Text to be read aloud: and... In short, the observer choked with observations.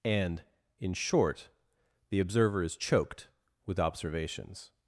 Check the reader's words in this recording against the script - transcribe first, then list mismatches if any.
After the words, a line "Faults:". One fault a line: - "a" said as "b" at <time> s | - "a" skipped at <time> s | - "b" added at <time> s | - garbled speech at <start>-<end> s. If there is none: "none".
and... In short, the observer is choked with observations.
Faults:
- "is" added at 2.6 s